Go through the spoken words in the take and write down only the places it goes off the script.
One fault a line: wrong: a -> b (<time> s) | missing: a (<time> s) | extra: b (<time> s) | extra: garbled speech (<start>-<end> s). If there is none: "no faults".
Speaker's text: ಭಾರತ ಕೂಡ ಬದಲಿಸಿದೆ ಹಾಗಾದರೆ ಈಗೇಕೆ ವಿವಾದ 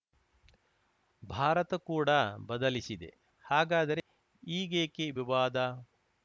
no faults